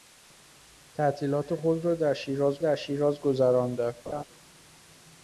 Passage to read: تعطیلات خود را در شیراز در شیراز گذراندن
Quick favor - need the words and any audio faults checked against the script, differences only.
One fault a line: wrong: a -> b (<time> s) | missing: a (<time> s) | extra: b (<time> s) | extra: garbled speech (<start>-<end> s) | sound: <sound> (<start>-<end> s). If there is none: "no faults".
sound: laugh (4.1-4.2 s)